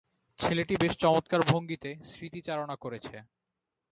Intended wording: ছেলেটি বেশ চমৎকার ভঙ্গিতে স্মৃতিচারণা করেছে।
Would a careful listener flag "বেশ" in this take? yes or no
no